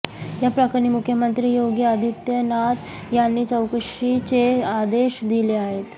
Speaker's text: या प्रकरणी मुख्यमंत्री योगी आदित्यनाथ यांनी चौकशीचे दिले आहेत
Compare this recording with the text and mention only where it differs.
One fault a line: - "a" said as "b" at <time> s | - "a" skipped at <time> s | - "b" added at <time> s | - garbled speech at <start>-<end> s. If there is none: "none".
- "आदेश" added at 4.7 s